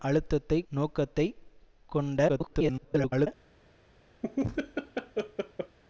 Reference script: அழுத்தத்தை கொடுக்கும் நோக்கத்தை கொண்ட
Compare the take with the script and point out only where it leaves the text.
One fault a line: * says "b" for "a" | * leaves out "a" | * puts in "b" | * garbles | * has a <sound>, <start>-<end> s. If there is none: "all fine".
* leaves out "கொடுக்கும்"
* garbles
* has a laugh, 4.2-5.8 s